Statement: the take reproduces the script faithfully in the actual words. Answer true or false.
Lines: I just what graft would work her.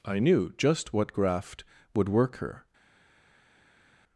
false